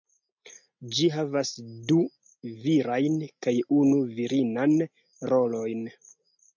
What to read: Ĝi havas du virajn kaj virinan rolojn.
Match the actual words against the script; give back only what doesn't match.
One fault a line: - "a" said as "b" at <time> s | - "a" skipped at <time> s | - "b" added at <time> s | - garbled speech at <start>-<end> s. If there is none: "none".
- "unu" added at 3.8 s